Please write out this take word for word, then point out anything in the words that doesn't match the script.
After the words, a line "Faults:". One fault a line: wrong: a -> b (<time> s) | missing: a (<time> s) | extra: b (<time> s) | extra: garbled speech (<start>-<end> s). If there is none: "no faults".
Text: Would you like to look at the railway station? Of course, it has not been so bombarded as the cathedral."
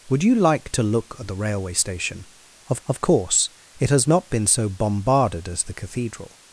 Would you like to look at the railway station? Of of course, it has not been so bombarded as the cathedral."
Faults:
extra: of (2.9 s)